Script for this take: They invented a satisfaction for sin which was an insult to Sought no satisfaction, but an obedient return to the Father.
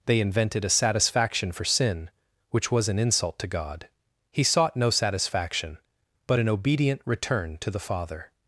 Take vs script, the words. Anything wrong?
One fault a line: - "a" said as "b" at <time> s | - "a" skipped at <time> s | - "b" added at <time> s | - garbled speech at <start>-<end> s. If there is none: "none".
- "God He" added at 3.5 s